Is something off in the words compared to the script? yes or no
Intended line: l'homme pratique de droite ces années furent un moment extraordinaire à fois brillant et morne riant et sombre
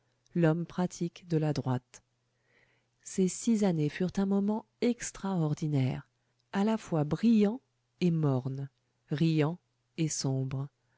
yes